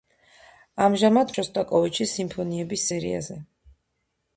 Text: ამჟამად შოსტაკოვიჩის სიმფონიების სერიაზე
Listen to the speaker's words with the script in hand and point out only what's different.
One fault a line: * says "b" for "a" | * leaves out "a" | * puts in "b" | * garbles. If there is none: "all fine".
all fine